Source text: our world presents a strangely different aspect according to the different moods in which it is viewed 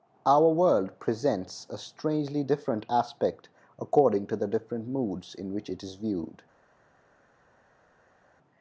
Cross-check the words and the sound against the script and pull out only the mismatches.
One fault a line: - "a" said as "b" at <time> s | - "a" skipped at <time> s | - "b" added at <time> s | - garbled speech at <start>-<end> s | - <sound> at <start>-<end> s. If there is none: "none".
none